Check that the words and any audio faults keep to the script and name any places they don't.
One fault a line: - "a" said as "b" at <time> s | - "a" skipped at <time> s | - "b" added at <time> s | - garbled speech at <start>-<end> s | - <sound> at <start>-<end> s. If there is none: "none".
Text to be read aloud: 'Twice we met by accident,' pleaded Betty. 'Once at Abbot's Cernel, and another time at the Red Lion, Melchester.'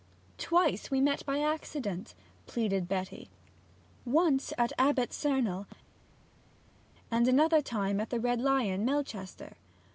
none